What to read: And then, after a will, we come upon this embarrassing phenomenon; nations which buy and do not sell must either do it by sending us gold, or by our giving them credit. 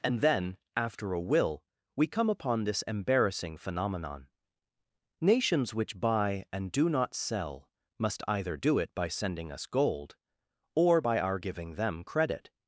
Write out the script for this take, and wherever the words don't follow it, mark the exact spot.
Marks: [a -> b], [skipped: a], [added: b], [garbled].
And then, after a will, we come upon this embarrassing phenomenon; nations which buy and do not sell must either do it by sending us gold, or by our giving them credit.